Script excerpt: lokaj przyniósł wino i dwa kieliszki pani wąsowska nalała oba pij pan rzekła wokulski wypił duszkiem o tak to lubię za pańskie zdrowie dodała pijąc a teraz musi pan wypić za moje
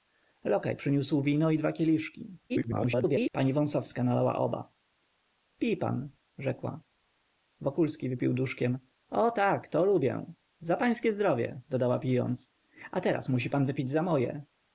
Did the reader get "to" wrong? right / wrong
right